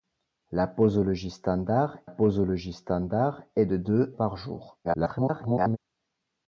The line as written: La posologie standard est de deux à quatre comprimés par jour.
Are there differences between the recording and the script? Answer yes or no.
yes